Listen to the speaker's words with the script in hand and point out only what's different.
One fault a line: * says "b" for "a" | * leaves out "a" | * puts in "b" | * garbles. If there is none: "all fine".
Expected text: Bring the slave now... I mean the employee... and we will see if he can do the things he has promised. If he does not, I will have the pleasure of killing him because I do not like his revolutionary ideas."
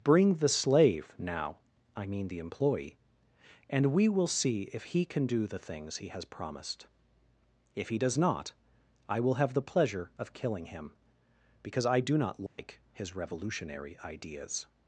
all fine